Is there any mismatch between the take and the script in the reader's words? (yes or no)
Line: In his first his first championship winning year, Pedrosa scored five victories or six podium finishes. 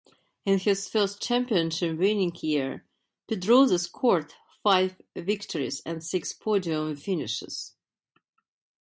yes